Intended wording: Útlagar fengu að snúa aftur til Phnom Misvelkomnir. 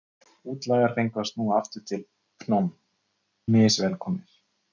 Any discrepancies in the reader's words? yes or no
no